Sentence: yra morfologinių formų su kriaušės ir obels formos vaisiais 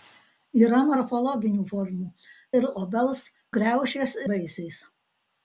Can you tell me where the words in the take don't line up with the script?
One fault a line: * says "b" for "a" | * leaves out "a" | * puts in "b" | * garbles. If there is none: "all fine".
* leaves out "su kriaušės"
* says "kriaušės" for "formos"